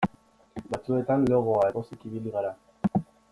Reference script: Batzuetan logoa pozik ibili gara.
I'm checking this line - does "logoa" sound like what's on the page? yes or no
yes